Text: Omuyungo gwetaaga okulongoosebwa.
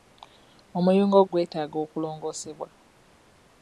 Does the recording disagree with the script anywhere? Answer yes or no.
no